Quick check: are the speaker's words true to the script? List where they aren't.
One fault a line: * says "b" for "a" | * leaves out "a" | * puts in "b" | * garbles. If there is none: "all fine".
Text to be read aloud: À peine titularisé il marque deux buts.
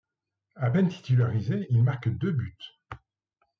all fine